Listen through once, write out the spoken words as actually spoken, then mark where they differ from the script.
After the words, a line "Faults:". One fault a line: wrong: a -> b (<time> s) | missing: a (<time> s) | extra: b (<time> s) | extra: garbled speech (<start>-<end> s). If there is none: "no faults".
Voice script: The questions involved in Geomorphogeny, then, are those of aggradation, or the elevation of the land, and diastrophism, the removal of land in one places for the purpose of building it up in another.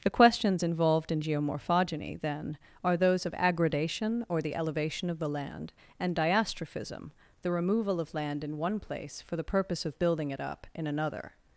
The questions involved in Geomorphogeny, then, are those of aggradation, or the elevation of the land, and diastrophism, the removal of land in one place for the purpose of building it up in another.
Faults:
wrong: places -> place (8.8 s)